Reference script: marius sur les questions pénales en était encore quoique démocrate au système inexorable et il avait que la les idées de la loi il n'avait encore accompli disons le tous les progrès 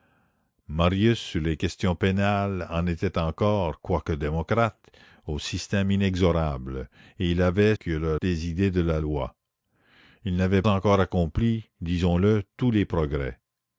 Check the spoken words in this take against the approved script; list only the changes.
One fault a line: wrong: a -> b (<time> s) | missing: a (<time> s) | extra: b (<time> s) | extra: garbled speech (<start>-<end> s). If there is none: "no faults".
no faults